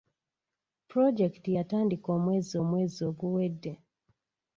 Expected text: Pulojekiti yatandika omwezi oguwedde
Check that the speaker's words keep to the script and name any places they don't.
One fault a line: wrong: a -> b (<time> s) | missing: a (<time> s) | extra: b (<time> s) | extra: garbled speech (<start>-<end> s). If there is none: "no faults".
extra: omwezi (2.6 s)